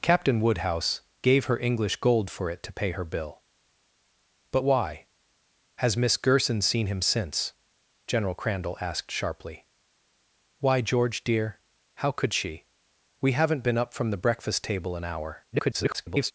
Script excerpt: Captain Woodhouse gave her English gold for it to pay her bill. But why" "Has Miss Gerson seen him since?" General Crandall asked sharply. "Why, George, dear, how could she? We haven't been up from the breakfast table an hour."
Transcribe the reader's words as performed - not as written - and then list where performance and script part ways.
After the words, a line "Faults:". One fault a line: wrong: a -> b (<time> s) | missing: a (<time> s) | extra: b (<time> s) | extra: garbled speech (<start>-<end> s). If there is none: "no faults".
Captain Woodhouse gave her English gold for it to pay her bill. But why" "Has Miss Gerson seen him since?" General Crandall asked sharply. "Why, George, dear, how could she? We haven't been up from the breakfast table an hour." [garbled]
Faults:
extra: garbled speech (15.5-16.3 s)